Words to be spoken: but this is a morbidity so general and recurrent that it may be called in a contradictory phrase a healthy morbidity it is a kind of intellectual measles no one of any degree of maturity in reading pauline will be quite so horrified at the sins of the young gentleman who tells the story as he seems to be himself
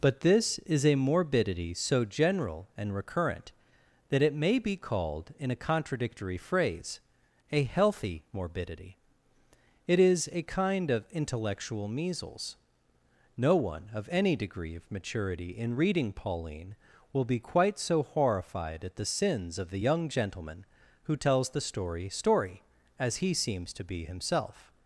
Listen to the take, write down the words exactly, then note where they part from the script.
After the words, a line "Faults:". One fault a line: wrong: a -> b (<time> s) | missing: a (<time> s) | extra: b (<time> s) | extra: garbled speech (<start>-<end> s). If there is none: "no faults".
but this is a morbidity so general and recurrent that it may be called in a contradictory phrase a healthy morbidity it is a kind of intellectual measles no one of any degree of maturity in reading pauline will be quite so horrified at the sins of the young gentleman who tells the story story as he seems to be himself
Faults:
extra: story (22.1 s)